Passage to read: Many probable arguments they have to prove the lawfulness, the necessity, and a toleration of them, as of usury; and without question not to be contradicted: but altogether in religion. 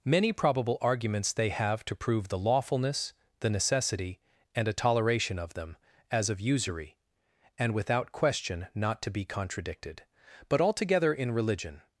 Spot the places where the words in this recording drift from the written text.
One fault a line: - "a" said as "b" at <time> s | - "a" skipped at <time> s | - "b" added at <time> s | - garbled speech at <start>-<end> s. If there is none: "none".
none